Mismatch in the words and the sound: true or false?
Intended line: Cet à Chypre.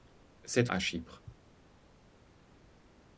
false